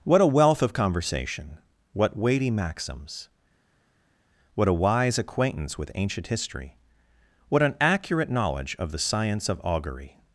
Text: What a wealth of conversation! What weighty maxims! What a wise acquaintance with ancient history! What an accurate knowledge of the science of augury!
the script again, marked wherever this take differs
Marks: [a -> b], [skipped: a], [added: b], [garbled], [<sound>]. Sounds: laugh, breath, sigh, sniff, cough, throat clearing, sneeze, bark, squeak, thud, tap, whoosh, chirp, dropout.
What a wealth of conversation! What weighty maxims! What a wise acquaintance with ancient history! What an accurate knowledge of the science of augury!